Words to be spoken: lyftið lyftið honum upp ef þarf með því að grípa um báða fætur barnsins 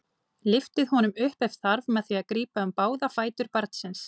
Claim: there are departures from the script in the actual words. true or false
true